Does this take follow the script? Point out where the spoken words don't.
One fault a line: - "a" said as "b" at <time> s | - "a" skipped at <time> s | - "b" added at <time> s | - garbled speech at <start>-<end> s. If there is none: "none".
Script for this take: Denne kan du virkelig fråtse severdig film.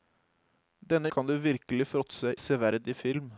none